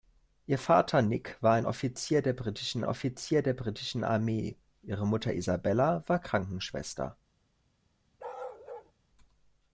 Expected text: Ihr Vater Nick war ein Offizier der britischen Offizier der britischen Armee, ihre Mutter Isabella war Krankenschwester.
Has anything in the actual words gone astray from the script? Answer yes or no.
no